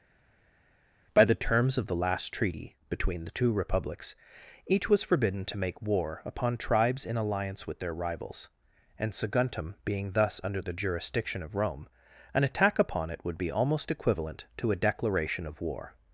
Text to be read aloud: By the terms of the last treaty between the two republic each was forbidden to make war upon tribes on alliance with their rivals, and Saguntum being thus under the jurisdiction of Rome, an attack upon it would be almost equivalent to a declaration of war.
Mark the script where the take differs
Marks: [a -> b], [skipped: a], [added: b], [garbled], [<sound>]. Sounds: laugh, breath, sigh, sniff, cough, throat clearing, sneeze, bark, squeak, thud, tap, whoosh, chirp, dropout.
By the terms of the last treaty between the two [republic -> republics] each was forbidden to make war upon tribes [on -> in] alliance with their rivals, and Saguntum being thus under the jurisdiction of Rome, an attack upon it would be almost equivalent to a declaration of war.